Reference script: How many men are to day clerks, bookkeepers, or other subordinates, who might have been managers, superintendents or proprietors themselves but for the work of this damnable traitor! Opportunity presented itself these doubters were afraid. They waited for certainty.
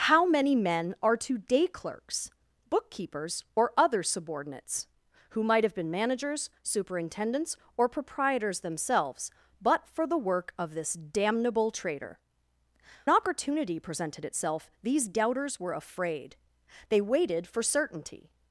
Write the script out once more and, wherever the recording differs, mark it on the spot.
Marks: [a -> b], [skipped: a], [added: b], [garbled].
How many men are to day clerks, bookkeepers, or other subordinates, who might have been managers, superintendents or proprietors themselves but for the work of this damnable traitor! Opportunity presented itself these doubters were afraid. They waited for certainty.